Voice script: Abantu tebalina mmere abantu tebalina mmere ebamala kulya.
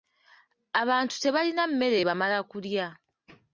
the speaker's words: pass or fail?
fail